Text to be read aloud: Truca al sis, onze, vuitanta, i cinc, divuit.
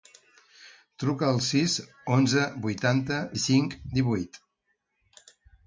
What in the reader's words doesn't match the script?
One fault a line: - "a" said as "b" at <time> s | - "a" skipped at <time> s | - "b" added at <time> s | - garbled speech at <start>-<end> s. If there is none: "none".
none